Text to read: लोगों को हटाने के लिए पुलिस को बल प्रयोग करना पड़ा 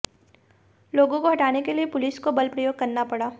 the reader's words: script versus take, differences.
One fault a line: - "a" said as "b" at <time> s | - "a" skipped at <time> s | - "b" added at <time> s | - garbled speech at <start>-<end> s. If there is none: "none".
none